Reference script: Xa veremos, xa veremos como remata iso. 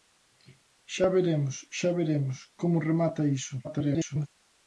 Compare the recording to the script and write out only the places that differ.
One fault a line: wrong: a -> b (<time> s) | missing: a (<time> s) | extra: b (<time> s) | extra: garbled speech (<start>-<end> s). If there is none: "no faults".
extra: garbled speech (3.6-4.3 s)